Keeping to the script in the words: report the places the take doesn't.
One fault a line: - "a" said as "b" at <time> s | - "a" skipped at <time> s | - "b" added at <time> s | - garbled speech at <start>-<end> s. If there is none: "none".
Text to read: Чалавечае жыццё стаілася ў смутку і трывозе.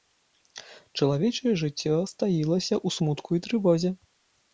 none